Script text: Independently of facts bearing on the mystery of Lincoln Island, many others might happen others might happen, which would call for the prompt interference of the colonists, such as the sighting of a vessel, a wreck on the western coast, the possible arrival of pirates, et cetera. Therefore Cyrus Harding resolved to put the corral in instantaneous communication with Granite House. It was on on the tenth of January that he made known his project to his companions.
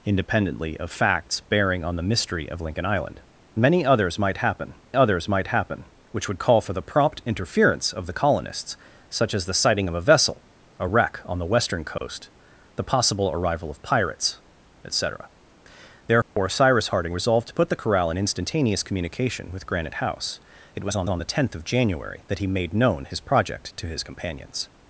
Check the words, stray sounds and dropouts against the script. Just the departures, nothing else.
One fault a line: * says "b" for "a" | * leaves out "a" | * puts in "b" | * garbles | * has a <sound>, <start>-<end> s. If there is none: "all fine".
* has a dropout, 12.0-12.0 s
* has a dropout, 16.2-16.4 s